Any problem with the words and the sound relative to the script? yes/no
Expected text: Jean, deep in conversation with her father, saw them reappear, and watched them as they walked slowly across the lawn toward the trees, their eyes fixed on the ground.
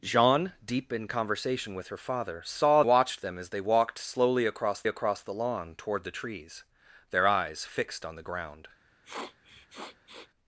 yes